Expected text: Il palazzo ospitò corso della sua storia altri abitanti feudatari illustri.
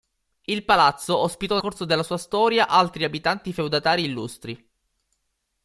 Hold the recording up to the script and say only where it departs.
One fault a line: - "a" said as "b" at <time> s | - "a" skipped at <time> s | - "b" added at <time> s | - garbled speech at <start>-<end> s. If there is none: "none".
none